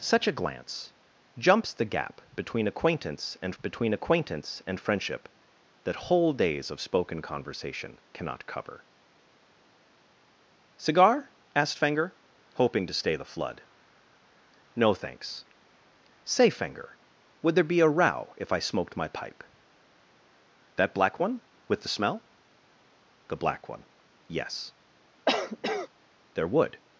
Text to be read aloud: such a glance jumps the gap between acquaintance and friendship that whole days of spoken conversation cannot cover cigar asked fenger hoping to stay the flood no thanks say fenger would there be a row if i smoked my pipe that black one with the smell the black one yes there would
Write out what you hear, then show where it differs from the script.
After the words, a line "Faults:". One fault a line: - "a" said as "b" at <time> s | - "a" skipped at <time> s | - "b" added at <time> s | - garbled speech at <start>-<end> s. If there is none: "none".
such a glance jumps the gap between acquaintance and between acquaintance and friendship that whole days of spoken conversation cannot cover cigar asked fenger hoping to stay the flood no thanks say fenger would there be a row if i smoked my pipe that black one with the smell the black one yes there would
Faults:
- "between acquaintance and" added at 3.6 s